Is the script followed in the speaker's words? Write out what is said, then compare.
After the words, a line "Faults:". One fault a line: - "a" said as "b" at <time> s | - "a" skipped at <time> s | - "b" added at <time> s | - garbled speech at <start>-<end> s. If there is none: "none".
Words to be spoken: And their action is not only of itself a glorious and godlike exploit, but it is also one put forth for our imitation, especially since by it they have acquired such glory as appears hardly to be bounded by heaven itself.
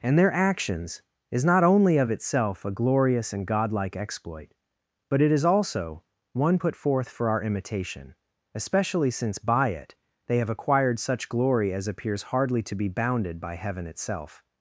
And their actions is not only of itself a glorious and godlike exploit, but it is also one put forth for our imitation, especially since by it they have acquired such glory as appears hardly to be bounded by heaven itself.
Faults:
- "action" said as "actions" at 0.3 s